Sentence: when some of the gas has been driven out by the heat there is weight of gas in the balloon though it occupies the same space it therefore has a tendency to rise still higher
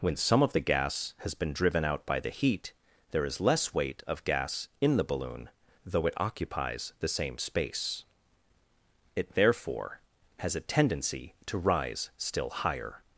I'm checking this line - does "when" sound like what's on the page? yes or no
yes